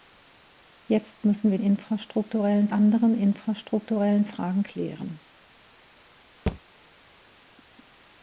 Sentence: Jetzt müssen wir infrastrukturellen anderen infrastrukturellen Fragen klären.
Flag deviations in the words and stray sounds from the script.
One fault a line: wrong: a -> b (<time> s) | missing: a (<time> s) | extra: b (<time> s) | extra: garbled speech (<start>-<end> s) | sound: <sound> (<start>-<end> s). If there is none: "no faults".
sound: thud (6.5-6.6 s)